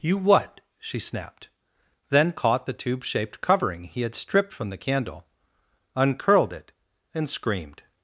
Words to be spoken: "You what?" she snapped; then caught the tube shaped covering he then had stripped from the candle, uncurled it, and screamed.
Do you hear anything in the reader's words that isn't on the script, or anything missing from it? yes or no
yes